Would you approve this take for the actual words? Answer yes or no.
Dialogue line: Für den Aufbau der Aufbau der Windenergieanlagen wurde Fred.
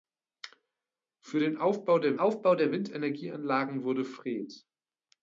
yes